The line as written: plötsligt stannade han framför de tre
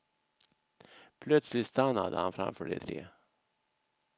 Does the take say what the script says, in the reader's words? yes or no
yes